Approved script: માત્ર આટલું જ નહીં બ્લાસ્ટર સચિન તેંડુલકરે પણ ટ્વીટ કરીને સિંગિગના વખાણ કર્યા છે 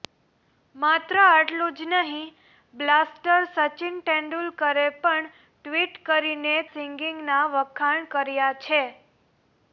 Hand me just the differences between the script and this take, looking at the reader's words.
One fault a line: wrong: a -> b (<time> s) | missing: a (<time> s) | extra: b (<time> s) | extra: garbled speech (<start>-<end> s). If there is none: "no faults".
no faults